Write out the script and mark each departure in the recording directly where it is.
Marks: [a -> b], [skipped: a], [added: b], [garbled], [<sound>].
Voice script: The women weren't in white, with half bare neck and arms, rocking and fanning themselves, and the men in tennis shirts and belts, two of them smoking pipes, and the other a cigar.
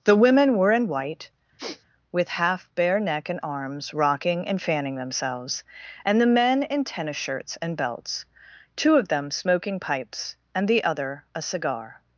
The women [weren't -> were] in white, [sniff] with half bare neck and arms, rocking and fanning themselves, and the men in tennis shirts and belts, two of them smoking pipes, and the other a cigar.